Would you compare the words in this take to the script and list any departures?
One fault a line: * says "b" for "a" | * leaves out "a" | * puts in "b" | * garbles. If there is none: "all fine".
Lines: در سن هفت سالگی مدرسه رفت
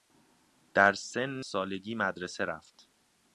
* leaves out "هفت"